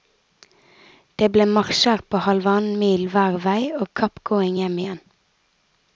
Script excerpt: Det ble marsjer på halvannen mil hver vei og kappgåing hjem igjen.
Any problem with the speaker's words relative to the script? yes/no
no